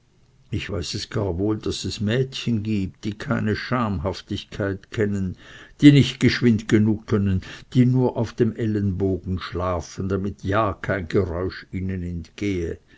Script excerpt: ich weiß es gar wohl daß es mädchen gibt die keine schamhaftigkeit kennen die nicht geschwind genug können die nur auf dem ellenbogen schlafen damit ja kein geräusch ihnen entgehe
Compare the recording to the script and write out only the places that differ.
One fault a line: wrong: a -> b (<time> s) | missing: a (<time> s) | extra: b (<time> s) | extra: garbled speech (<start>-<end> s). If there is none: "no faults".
no faults